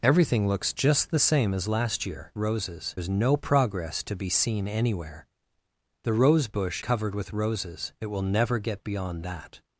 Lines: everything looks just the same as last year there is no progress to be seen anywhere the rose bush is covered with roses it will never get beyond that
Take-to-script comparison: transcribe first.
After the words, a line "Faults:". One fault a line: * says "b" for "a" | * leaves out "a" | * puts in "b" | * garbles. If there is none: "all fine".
everything looks just the same as last year roses is no progress to be seen anywhere the rose bush covered with roses it will never get beyond that
Faults:
* says "roses" for "there"
* leaves out "is"